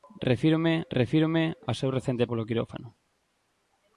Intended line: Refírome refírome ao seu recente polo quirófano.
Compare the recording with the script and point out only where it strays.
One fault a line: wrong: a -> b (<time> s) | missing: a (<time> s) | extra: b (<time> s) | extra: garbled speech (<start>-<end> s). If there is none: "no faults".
no faults